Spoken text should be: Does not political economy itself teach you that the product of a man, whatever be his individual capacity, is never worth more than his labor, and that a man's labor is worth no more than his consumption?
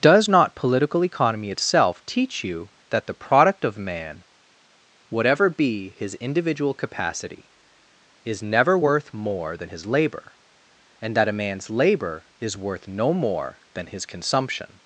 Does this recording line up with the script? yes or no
no